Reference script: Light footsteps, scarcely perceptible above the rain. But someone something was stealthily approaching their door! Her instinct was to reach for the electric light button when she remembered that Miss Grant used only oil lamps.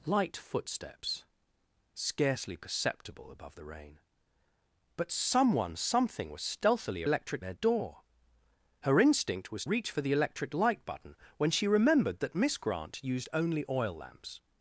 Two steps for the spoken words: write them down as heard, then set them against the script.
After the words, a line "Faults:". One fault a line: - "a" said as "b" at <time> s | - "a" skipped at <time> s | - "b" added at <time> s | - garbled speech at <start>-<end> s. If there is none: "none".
Light footsteps, scarcely perceptible above the rain. But someone something was stealthily electric their door! Her instinct was reach for the electric light button when she remembered that Miss Grant used only oil lamps.
Faults:
- "approaching" said as "electric" at 7.0 s
- "to" skipped at 9.7 s